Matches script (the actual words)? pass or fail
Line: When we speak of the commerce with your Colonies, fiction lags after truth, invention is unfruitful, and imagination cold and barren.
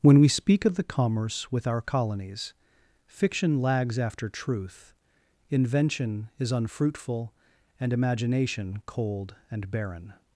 fail